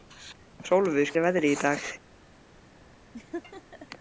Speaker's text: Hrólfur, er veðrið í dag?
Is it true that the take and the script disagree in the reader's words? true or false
false